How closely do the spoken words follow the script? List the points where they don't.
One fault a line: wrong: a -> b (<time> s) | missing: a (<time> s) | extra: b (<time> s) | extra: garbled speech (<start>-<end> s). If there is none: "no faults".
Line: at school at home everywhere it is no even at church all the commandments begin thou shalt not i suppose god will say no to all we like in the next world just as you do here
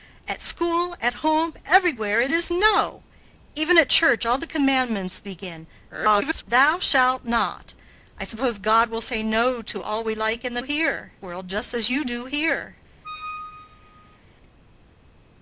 extra: garbled speech (5.9-6.4 s)
wrong: next -> here (10.6 s)